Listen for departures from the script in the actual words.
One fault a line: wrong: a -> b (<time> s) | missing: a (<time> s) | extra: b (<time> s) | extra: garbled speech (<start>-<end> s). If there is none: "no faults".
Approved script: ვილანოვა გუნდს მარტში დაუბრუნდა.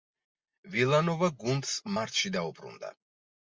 no faults